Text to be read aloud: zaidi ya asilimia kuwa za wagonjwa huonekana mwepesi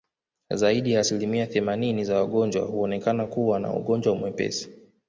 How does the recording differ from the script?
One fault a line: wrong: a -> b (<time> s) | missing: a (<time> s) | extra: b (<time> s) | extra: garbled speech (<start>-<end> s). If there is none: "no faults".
wrong: kuwa -> themanini (1.5 s)
extra: kuwa na ugonjwa (3.2 s)